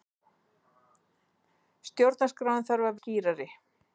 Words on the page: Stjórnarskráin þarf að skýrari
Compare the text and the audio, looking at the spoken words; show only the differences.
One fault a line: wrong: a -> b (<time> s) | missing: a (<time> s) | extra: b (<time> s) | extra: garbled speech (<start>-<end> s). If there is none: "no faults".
no faults